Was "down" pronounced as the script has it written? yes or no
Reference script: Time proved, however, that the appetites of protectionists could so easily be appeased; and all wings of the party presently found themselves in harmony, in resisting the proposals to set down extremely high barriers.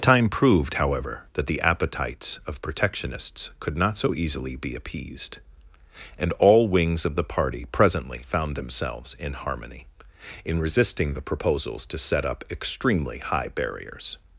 no